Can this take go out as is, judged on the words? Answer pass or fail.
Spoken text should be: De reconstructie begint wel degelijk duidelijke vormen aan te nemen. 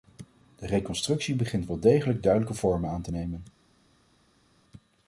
pass